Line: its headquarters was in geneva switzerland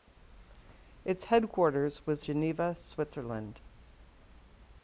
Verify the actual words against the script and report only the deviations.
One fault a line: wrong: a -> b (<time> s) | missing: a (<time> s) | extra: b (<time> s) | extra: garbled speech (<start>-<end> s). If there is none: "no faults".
missing: in (2.2 s)